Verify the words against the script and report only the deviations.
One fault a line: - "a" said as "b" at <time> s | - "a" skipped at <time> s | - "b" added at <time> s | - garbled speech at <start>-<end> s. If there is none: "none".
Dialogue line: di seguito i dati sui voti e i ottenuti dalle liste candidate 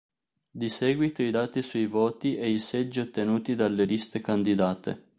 - "seggi" added at 2.6 s